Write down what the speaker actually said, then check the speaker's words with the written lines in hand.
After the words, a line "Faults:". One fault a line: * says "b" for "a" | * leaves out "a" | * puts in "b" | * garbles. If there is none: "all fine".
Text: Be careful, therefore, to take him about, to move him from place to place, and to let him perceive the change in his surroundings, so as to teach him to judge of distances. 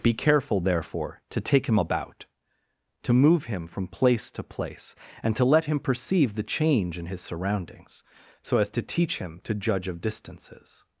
Be careful, therefore, to take him about, to move him from place to place, and to let him perceive the change in his surroundings, so as to teach him to judge of distances.
Faults:
all fine